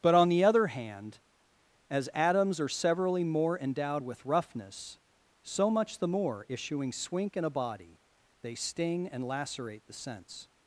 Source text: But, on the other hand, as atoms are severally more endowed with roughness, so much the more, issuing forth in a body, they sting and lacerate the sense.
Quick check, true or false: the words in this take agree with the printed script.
false